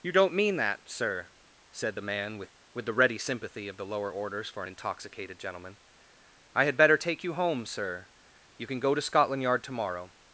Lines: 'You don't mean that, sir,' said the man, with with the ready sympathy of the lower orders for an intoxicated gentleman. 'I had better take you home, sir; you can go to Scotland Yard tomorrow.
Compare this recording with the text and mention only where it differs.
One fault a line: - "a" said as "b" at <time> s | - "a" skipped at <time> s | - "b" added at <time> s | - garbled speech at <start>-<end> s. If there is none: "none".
none